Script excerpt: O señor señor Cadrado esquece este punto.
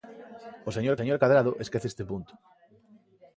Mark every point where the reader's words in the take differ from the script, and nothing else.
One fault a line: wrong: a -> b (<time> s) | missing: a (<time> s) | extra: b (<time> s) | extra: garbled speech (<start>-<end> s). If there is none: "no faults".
no faults